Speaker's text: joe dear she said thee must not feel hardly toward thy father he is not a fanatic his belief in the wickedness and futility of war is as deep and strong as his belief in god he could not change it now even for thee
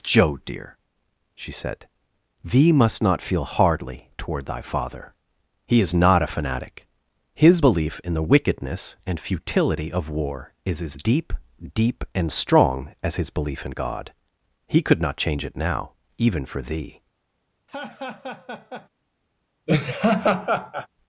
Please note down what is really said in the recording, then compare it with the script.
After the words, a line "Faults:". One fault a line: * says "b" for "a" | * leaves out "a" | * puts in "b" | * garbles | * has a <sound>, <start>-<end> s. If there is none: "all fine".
joe dear she said thee must not feel hardly toward thy father he is not a fanatic his belief in the wickedness and futility of war is as deep deep and strong as his belief in god he could not change it now even for thee
Faults:
* puts in "deep"
* has a laugh, 17.7-18.9 s
* has a laugh, 19.7-20.9 s